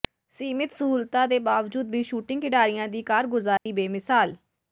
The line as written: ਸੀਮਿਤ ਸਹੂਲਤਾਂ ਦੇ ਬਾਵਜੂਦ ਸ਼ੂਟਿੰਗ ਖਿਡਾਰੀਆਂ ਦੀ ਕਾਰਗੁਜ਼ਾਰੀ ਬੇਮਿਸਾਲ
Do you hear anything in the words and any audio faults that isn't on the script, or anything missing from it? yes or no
yes